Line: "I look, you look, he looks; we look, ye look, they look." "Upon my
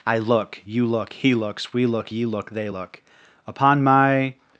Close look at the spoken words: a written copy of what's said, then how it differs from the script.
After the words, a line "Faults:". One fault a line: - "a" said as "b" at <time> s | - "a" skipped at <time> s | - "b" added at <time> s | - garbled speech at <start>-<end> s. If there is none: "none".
"I look, you look, he looks; we look, ye look, they look." "Upon my
Faults:
none